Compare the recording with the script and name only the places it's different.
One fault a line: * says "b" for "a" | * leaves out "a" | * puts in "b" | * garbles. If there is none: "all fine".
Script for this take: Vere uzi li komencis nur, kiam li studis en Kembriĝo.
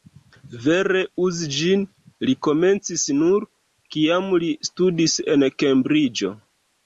* puts in "ĝin"